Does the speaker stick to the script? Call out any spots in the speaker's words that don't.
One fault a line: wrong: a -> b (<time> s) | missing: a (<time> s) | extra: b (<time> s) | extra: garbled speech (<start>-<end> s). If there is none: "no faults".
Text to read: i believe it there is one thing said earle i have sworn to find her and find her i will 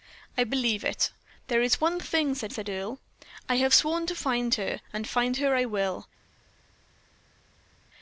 extra: said (2.5 s)